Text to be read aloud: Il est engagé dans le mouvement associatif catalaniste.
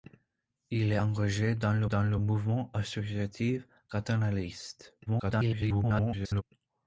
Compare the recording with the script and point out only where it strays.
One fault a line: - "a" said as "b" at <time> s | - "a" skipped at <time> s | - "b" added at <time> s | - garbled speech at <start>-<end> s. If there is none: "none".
- "dans le" added at 1.8 s
- garbled speech at 5.1-6.4 s